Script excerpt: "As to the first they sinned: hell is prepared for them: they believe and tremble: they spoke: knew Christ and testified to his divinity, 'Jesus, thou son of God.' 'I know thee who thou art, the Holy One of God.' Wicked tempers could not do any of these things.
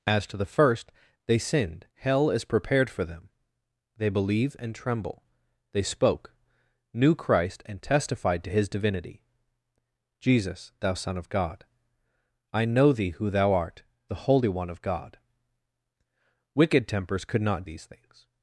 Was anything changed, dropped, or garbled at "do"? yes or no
yes